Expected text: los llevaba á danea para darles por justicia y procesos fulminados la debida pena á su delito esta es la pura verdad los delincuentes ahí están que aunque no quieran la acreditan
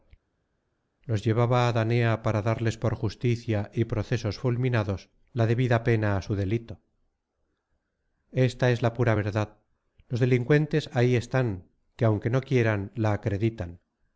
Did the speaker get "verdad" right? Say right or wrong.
right